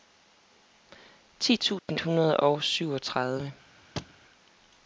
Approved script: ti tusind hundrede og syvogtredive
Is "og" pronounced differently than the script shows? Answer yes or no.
no